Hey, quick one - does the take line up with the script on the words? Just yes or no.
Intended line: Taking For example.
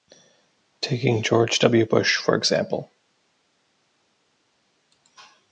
no